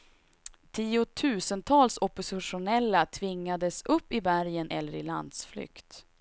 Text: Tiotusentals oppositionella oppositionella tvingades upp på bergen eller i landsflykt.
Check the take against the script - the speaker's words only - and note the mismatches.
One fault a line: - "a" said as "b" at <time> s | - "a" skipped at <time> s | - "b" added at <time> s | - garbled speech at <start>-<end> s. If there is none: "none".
- "oppositionella" skipped at 3.0 s
- "på" said as "i" at 4.1 s